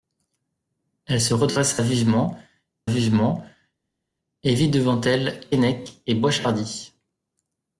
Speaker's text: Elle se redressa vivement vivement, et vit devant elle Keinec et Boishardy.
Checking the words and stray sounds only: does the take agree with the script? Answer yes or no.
yes